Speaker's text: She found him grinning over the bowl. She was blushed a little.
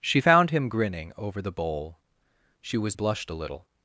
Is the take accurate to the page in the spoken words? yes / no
yes